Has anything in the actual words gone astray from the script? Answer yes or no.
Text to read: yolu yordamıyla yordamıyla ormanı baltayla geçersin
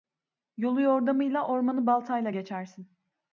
yes